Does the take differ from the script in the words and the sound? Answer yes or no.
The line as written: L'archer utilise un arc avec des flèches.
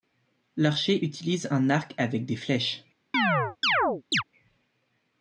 yes